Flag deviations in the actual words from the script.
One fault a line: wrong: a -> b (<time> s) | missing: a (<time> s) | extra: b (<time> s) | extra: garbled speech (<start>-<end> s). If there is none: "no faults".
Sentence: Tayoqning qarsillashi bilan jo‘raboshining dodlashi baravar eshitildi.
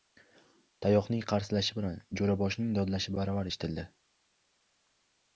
no faults